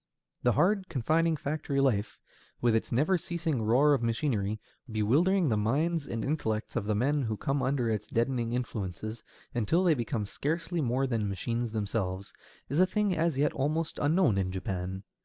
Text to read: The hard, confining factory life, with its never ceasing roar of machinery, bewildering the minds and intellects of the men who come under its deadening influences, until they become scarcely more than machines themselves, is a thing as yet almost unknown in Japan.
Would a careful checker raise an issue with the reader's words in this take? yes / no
no